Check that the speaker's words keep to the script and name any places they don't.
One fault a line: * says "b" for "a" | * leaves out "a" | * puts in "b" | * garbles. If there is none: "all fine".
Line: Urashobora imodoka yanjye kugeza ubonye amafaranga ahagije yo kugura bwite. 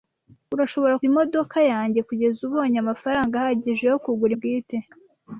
all fine